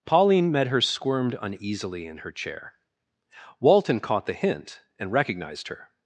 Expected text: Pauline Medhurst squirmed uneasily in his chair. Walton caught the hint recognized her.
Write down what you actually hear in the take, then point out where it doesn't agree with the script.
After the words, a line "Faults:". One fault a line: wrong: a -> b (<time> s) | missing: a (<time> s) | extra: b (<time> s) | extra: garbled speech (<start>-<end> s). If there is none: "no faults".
Pauline Medhurst squirmed uneasily in her chair. Walton caught the hint and recognized her.
Faults:
wrong: his -> her (2.2 s)
extra: and (5.0 s)